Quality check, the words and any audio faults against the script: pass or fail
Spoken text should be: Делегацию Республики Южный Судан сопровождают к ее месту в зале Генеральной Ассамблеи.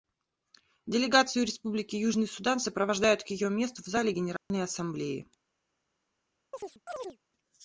fail